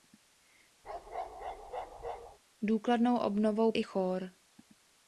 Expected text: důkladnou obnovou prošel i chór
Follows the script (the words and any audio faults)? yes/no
no